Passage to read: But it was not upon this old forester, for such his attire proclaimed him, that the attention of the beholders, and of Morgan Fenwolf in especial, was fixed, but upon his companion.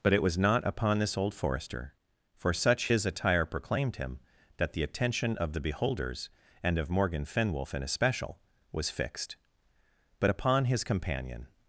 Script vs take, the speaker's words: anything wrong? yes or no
no